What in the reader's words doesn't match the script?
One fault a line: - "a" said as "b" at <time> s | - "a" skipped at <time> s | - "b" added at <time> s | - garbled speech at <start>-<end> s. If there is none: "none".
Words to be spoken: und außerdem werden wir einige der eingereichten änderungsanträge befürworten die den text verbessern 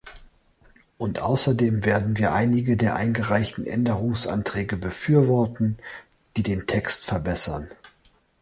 none